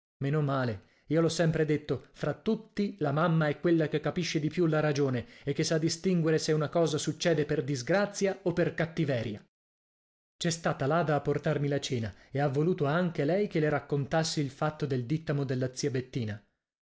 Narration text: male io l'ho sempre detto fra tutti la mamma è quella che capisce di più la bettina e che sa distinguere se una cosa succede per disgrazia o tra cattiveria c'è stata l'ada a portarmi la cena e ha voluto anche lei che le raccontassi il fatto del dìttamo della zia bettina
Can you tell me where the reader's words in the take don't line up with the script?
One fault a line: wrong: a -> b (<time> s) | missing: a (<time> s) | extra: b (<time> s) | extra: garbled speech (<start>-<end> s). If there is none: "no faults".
wrong: bettina -> ragione (4.8 s)
wrong: tra -> per (8.5 s)